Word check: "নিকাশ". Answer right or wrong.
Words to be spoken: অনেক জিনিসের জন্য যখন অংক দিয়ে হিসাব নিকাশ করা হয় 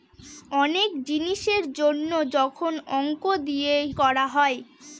wrong